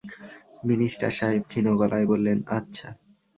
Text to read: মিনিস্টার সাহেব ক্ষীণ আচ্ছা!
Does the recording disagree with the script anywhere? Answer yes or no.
yes